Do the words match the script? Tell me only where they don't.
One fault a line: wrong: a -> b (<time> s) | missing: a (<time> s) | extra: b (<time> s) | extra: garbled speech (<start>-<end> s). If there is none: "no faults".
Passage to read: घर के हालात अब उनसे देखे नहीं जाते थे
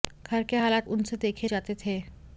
missing: अब (0.9 s)
missing: नहीं (1.5 s)